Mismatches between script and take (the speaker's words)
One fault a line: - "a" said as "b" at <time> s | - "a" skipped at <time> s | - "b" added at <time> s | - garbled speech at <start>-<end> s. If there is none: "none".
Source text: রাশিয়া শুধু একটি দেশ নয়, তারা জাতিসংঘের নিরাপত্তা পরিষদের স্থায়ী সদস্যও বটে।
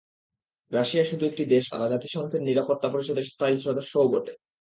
- "নয়" skipped at 1.7 s